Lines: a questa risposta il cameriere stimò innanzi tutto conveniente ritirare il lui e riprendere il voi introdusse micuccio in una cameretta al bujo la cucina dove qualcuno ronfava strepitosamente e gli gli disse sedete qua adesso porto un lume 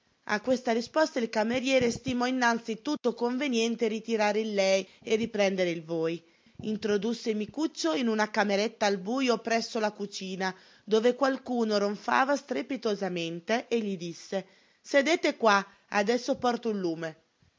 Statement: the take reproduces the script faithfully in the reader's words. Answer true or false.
false